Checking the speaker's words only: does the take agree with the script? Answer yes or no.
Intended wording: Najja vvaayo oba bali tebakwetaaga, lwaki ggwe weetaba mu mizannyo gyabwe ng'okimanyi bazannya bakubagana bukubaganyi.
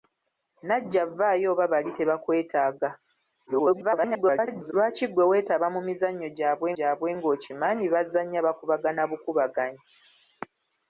no